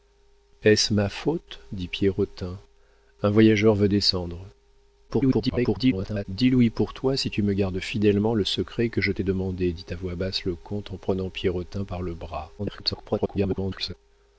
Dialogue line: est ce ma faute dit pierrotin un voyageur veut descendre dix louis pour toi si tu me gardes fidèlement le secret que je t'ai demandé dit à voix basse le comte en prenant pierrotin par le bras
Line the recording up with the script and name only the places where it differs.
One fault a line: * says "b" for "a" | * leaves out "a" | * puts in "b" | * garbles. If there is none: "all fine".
* garbles
* garbles